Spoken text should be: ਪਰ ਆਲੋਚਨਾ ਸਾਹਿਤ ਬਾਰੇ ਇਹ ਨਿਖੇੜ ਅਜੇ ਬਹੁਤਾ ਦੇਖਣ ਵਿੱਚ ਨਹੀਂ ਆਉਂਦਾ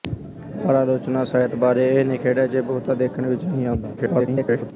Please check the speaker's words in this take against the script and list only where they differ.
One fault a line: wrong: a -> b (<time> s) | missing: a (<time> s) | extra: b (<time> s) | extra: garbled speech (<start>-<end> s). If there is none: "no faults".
extra: garbled speech (4.0-4.7 s)